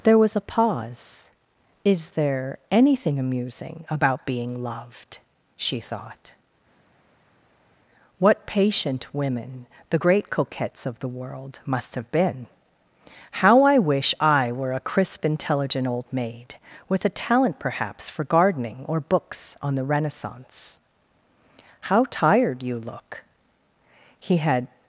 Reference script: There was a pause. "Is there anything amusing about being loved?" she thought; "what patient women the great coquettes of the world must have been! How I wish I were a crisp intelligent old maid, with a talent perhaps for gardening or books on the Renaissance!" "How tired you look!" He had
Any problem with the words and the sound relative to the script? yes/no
no